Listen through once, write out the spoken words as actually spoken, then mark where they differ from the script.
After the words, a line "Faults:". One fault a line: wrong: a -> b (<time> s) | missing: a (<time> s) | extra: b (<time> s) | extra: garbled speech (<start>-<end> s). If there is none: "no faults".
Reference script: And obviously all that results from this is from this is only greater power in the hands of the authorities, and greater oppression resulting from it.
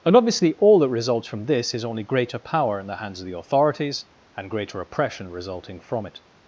And obviously all that results from this is only greater power in the hands of the authorities, and greater oppression resulting from it.
Faults:
missing: from this is (1.9 s)